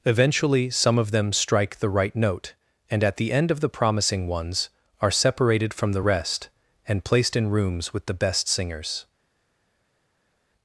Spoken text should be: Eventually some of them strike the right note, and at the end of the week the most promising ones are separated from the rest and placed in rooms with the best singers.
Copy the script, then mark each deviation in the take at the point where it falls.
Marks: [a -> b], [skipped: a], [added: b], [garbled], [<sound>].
Eventually some of them strike the right note, and at the end of the [skipped: week the most] promising ones are separated from the rest and placed in rooms with the best singers.